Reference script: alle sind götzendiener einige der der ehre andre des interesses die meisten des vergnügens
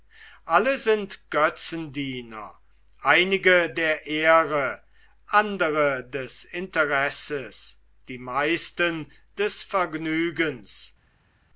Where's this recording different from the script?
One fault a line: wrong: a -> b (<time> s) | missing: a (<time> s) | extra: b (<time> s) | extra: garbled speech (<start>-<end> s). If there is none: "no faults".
missing: der (4.1 s)